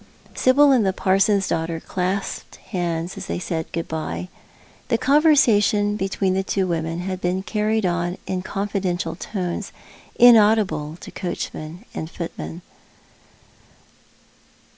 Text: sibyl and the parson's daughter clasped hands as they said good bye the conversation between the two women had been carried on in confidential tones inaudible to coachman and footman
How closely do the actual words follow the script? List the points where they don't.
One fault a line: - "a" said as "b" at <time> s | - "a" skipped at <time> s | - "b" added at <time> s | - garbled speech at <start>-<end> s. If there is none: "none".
none